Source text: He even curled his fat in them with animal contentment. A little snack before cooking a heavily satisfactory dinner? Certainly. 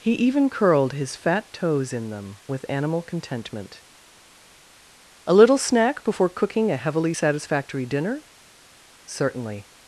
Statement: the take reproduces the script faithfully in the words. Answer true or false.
false